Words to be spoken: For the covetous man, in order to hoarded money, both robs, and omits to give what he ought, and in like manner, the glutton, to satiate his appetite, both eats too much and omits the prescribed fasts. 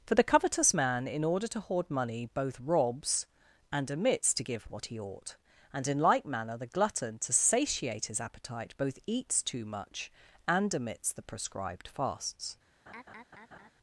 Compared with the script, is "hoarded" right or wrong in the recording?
wrong